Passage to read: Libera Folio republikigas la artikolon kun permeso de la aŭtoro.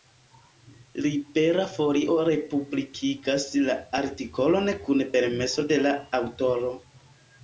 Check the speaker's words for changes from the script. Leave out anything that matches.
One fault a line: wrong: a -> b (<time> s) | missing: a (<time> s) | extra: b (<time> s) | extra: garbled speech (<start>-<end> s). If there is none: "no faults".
no faults